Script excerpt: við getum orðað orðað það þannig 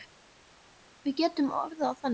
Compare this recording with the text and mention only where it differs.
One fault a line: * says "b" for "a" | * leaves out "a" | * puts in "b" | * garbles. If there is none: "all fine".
* leaves out "orðað"